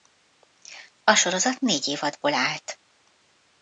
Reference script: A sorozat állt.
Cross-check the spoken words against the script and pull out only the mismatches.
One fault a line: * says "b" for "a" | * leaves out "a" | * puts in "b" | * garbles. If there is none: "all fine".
* puts in "négy évadból"